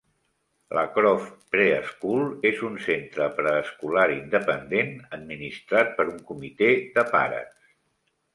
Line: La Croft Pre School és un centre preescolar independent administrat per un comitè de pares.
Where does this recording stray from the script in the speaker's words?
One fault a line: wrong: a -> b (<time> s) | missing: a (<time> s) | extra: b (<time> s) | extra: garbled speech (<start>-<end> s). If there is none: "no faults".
no faults